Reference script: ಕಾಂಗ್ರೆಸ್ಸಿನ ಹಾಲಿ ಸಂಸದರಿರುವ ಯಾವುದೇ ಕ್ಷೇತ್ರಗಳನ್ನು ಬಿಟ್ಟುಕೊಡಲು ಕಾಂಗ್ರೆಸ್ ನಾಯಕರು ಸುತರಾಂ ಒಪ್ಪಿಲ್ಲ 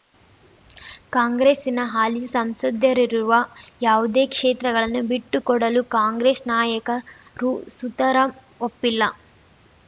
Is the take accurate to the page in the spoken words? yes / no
yes